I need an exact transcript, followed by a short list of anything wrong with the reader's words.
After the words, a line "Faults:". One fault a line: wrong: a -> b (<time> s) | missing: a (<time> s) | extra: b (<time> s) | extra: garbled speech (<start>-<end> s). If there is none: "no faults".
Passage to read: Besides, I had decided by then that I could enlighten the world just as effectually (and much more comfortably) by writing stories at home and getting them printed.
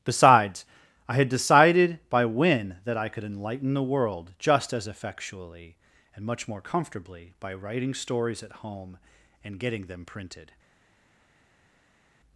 Besides, I had decided by when that I could enlighten the world just as effectually (and much more comfortably) by writing stories at home and getting them printed.
Faults:
wrong: then -> when (2.2 s)